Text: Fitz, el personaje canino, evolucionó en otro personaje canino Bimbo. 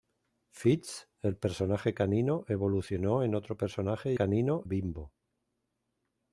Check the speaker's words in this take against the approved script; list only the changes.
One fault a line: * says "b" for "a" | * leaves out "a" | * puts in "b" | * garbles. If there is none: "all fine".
all fine